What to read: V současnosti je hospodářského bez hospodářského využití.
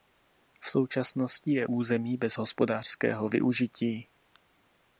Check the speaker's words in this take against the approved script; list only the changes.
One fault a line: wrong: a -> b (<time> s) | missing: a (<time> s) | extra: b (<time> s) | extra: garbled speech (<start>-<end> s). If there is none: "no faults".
wrong: hospodářského -> území (1.6 s)